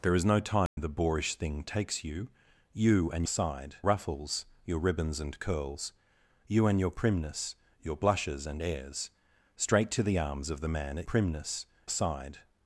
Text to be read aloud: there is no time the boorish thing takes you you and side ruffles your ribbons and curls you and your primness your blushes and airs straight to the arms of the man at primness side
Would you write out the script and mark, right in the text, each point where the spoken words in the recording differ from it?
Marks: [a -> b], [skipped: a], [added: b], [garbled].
there is no time the boorish thing takes you you and side ruffles your ribbons and curls you and your primness your blushes and airs straight to the arms of the man at primness side